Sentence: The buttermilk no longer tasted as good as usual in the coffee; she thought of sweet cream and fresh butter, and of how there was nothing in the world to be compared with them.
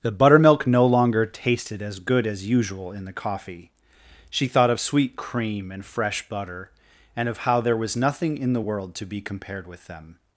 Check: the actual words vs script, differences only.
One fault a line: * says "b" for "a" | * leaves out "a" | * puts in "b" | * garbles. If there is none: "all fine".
all fine